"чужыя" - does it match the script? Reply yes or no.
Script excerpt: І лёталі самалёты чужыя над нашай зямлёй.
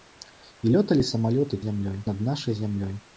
no